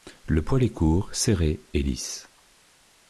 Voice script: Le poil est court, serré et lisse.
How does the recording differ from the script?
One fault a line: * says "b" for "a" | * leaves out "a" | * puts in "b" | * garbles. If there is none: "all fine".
all fine